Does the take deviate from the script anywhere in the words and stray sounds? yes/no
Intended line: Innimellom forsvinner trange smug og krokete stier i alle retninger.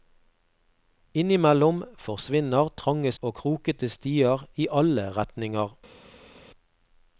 yes